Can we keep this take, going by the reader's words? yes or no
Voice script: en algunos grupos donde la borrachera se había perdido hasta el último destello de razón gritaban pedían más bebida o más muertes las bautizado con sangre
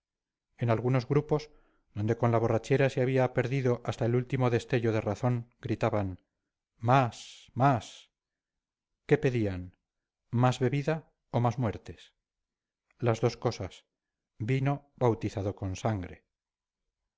no